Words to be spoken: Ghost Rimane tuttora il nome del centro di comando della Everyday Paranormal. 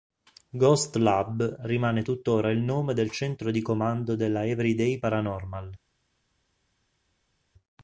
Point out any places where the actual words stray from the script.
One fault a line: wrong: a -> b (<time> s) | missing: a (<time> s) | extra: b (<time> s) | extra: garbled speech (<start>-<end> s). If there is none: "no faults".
extra: Lab (0.9 s)